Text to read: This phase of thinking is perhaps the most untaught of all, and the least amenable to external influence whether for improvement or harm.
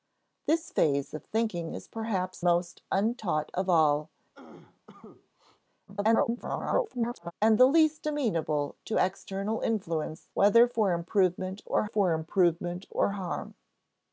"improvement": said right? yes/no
yes